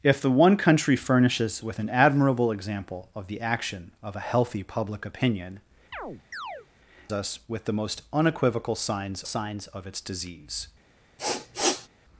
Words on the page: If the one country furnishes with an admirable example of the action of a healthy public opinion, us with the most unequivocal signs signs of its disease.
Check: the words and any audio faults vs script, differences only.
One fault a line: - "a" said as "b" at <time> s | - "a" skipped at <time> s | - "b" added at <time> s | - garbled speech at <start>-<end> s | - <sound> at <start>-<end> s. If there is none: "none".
- chirp at 5.9-6.7 s
- sniff at 11.2-11.9 s